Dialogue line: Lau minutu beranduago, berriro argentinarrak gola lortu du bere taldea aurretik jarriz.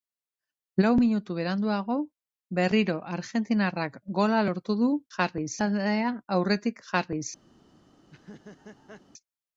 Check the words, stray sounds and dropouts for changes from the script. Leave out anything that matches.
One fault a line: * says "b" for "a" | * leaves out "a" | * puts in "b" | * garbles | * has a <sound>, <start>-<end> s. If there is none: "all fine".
* says "jarriz" for "bere"
* has a laugh, 8.0-9.0 s